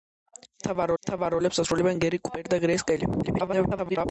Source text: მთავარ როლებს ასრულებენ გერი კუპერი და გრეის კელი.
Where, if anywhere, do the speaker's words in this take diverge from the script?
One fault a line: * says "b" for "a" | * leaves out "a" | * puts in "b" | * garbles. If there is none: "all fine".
* puts in "მთავარ"
* garbles